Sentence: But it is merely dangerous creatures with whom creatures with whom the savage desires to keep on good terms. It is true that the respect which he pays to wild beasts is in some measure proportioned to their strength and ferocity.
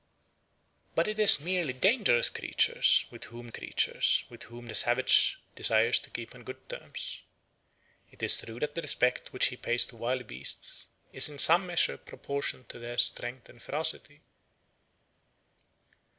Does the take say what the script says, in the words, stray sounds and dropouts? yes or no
yes